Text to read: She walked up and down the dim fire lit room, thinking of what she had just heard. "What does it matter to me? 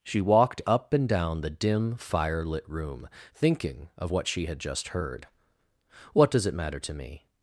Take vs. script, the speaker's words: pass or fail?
pass